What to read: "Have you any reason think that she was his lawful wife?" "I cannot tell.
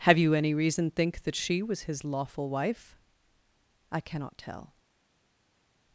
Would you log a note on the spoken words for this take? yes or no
no